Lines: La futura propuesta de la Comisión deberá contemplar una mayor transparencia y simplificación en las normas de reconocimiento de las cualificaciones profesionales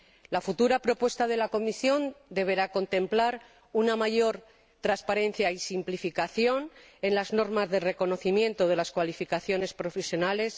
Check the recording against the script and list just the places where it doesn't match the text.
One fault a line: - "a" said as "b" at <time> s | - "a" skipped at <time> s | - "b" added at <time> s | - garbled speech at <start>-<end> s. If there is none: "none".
none